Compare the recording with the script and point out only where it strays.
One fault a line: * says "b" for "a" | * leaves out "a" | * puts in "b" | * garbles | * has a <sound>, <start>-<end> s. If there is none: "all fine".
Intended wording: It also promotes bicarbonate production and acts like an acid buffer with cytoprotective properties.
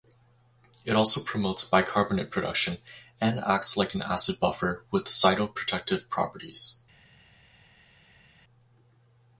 all fine